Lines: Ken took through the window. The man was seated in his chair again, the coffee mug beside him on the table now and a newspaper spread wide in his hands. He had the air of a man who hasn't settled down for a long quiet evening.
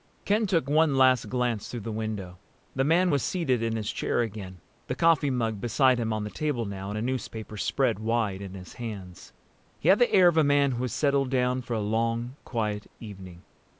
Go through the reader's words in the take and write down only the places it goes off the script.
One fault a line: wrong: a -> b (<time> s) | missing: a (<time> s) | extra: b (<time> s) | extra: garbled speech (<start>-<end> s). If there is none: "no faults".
extra: one last glance (0.7 s)
wrong: hasn't -> has (10.8 s)